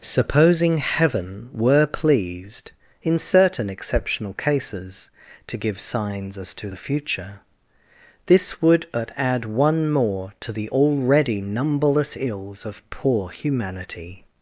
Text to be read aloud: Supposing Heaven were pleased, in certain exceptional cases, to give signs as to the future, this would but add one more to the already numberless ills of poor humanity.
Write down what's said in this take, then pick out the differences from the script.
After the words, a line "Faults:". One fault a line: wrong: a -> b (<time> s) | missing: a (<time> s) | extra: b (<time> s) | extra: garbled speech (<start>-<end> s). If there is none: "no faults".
Supposing Heaven were pleased, in certain exceptional cases, to give signs as to the future, this would but add one more to the already numberless ills of poor humanity.
Faults:
no faults